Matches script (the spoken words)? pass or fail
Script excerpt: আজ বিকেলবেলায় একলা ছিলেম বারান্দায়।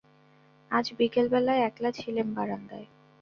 pass